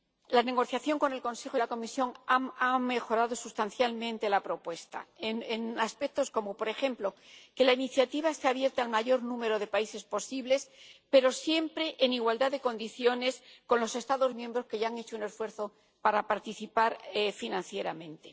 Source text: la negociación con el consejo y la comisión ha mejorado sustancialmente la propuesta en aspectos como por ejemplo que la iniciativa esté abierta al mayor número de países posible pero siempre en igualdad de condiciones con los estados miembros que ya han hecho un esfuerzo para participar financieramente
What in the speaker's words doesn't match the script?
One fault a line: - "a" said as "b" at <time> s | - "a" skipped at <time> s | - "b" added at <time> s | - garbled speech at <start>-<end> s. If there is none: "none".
none